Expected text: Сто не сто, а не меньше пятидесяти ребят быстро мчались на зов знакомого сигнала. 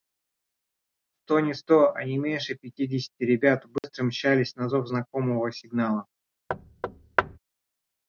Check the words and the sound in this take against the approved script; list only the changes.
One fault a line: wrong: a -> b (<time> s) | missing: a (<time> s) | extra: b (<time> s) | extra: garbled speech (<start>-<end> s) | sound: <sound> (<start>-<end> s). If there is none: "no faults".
sound: dropout (3.8-3.8 s)
sound: thud (6.5-7.4 s)